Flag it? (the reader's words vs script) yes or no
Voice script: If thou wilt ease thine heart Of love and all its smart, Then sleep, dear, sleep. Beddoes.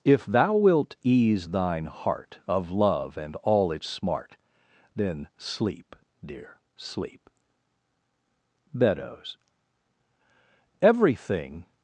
yes